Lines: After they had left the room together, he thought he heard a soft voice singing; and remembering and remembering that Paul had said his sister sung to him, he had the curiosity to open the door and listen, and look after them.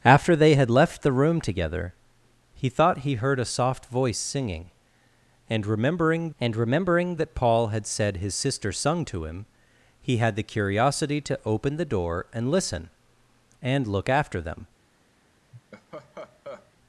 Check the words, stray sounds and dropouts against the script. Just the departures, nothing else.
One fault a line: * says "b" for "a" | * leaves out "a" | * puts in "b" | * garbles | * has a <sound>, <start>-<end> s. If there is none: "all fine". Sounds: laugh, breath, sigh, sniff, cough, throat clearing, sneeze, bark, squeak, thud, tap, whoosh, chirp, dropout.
* has a laugh, 15.5-16.7 s